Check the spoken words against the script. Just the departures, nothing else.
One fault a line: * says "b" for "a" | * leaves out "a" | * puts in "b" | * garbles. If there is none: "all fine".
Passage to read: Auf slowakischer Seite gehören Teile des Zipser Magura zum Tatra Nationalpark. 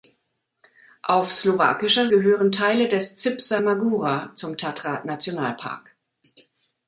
* leaves out "Seite"